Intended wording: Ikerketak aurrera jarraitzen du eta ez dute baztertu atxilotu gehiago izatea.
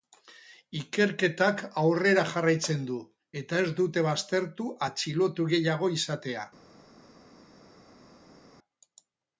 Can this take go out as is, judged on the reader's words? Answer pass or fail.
pass